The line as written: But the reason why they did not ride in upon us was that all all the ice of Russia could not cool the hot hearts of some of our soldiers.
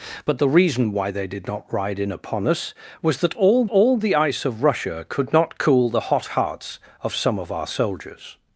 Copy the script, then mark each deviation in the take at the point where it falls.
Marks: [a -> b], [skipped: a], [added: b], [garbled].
But the reason why they did not ride in upon us was that all all the ice of Russia could not cool the hot hearts of some of our soldiers.